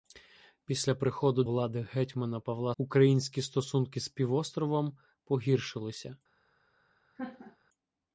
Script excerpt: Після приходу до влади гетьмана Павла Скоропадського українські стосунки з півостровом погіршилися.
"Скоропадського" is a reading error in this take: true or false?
true